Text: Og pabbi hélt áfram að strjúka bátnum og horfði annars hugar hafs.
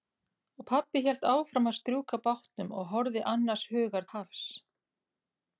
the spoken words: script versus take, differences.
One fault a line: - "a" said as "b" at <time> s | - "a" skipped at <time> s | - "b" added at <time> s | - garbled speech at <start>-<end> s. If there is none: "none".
none